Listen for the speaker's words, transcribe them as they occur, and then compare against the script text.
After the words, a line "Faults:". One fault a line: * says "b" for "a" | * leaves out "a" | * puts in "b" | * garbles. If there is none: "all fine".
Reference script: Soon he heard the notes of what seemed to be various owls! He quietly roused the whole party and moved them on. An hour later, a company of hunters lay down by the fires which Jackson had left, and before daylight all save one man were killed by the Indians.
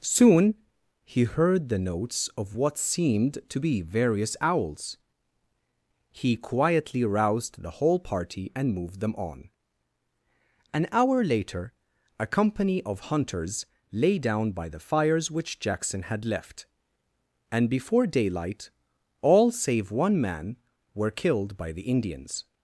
Soon he heard the notes of what seemed to be various owls! He quietly roused the whole party and moved them on. An hour later, a company of hunters lay down by the fires which Jackson had left, and before daylight all save one man were killed by the Indians.
Faults:
all fine